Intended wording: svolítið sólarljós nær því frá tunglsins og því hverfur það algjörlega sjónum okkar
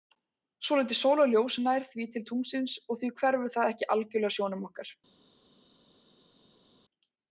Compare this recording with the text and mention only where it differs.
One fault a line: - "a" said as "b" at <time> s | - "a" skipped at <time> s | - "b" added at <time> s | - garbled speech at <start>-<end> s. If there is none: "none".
- "frá" said as "til" at 2.1 s
- "ekki" added at 3.7 s